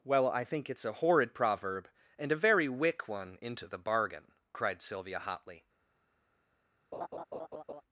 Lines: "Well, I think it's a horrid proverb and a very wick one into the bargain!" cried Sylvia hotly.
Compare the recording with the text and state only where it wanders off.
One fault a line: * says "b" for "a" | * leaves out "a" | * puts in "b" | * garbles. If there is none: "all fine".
all fine